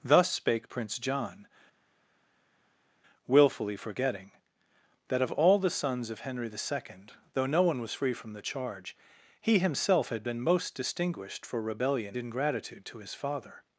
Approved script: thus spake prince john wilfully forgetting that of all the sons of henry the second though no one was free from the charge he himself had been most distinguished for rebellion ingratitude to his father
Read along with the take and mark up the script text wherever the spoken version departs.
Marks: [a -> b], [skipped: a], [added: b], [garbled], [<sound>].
thus spake prince john wilfully forgetting that of all the sons of henry the second though no one was free from the charge he himself had been most distinguished for rebellion ingratitude to his father